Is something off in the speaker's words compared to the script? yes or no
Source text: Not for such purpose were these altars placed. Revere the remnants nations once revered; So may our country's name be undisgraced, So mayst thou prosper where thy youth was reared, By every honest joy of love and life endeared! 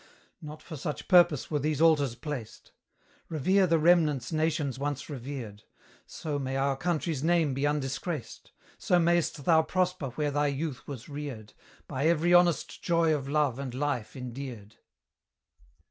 no